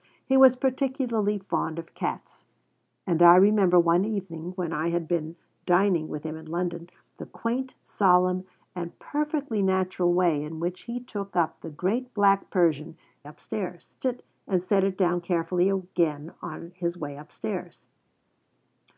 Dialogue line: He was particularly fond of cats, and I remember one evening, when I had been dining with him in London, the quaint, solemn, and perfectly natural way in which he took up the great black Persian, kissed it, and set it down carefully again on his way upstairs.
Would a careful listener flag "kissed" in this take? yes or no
yes